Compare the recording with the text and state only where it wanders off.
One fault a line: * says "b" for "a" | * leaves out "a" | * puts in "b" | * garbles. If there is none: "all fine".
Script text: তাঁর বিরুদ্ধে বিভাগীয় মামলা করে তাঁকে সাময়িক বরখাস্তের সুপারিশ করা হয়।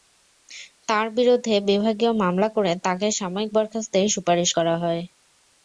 all fine